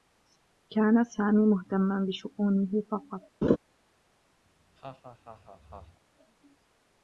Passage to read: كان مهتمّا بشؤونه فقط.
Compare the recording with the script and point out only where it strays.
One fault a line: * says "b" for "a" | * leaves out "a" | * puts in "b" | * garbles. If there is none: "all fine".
* puts in "سامي"